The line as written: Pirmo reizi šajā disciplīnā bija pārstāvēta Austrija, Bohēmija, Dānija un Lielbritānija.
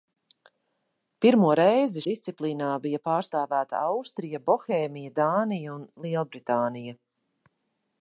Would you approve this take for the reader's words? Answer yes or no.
no